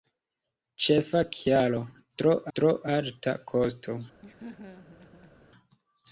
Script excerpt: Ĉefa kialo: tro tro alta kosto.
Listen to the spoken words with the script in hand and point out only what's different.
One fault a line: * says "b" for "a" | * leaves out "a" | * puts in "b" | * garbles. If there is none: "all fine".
all fine